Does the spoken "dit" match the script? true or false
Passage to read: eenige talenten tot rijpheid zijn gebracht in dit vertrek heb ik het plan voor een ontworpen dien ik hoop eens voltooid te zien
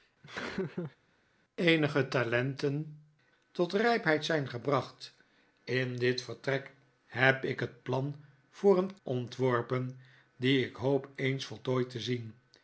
true